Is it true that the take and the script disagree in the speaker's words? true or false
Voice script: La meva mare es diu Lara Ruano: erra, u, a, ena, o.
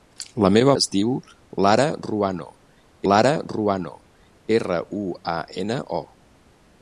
true